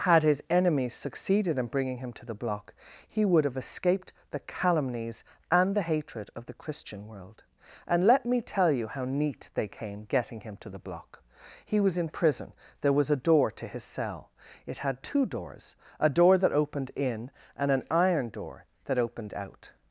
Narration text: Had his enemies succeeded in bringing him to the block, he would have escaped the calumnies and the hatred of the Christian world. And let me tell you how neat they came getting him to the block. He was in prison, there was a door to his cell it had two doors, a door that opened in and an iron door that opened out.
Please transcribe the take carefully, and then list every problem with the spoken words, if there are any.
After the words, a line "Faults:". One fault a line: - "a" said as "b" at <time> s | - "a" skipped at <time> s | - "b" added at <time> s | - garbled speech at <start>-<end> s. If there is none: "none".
Had his enemies succeeded in bringing him to the block, he would have escaped the calumnies and the hatred of the Christian world. And let me tell you how neat they came getting him to the block. He was in prison, there was a door to his cell it had two doors, a door that opened in and an iron door that opened out.
Faults:
none